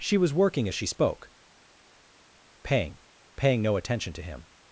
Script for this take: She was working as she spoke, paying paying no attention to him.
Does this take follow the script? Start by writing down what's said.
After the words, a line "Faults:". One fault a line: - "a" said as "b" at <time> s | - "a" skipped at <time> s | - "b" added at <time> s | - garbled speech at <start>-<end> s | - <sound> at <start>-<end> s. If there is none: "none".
She was working as she spoke, paying paying no attention to him.
Faults:
none